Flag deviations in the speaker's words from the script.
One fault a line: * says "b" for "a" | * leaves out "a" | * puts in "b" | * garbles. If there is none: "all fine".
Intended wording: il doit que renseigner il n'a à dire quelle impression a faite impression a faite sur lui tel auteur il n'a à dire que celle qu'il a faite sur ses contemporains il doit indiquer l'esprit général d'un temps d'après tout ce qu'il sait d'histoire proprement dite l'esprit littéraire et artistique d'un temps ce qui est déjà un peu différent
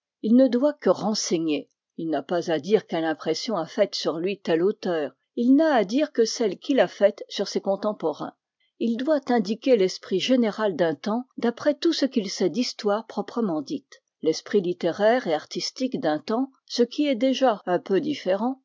* puts in "ne"
* puts in "pas"
* leaves out "impression a faite"